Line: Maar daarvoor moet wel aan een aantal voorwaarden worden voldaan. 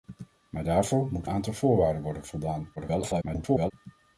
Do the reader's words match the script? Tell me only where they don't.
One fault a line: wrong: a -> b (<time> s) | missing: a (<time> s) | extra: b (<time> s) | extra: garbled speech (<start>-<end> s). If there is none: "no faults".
missing: wel aan een (1.3 s)
extra: garbled speech (2.8-3.7 s)